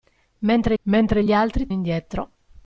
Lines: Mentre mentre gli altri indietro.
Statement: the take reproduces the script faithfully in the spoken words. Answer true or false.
true